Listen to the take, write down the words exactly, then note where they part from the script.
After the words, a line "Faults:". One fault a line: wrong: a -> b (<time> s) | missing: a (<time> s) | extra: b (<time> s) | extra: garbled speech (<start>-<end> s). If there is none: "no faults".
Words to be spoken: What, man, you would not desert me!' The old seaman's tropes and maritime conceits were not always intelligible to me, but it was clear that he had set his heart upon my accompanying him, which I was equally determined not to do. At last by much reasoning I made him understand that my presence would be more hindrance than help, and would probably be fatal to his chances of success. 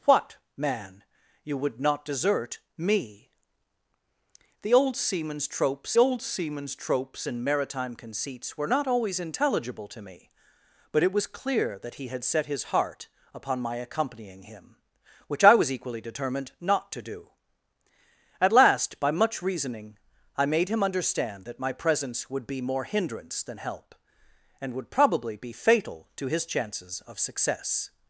What, man, you would not desert me!' The old seaman's tropes old seaman's tropes and maritime conceits were not always intelligible to me, but it was clear that he had set his heart upon my accompanying him, which I was equally determined not to do. At last by much reasoning I made him understand that my presence would be more hindrance than help, and would probably be fatal to his chances of success.
Faults:
extra: old seaman's tropes (6.0 s)